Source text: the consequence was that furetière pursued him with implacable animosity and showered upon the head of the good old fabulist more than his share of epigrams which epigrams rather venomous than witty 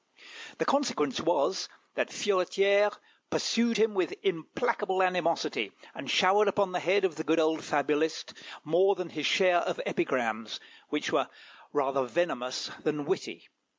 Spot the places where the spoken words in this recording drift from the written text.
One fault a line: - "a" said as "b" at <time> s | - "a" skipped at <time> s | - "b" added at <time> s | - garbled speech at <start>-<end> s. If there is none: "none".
- "epigrams" said as "were" at 11.1 s